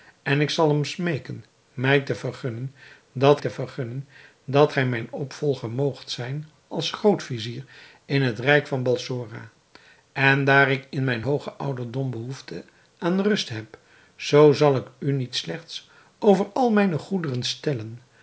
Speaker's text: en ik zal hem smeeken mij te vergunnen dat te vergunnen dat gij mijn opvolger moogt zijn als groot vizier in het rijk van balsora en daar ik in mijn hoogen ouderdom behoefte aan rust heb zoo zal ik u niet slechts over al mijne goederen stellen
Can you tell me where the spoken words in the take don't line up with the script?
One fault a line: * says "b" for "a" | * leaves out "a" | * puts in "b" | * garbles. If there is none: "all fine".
all fine